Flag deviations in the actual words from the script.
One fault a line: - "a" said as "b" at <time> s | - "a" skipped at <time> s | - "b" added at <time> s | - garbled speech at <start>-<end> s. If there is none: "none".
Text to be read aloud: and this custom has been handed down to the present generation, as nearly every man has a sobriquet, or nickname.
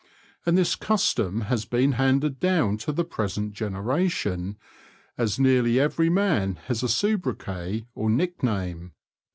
none